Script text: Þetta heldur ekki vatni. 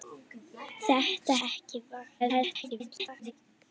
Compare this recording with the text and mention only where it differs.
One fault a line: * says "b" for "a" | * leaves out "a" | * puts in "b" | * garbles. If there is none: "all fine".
* leaves out "heldur"
* garbles